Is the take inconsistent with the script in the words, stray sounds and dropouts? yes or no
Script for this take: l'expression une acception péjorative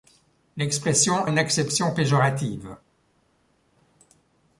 no